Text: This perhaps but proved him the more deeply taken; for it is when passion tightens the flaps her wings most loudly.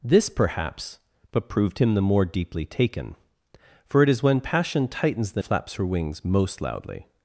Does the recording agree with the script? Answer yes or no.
yes